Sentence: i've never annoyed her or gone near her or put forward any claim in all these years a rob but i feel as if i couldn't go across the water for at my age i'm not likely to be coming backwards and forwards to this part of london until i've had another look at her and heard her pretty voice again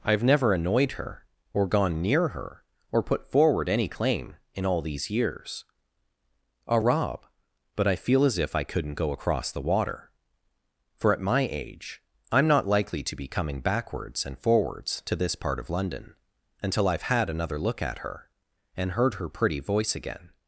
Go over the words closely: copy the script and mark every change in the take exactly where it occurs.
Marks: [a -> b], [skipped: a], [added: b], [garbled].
i've never annoyed her or gone near her or put forward any claim in all these years a rob but i feel as if i couldn't go across the water for at my age i'm not likely to be coming backwards and forwards to this part of london until i've had another look at her and heard her pretty voice again